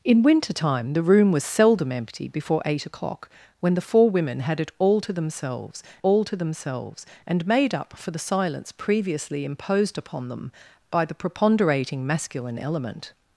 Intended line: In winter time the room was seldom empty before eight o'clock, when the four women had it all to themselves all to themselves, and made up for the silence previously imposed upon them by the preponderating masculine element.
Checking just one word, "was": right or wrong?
right